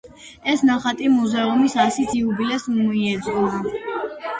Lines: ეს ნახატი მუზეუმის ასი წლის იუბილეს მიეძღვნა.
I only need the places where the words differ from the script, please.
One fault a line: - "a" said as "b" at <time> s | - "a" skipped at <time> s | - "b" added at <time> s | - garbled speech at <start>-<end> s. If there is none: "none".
- "წლის" skipped at 2.1 s